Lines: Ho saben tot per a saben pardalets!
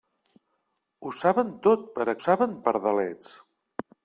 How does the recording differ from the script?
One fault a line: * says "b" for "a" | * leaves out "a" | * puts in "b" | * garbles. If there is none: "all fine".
all fine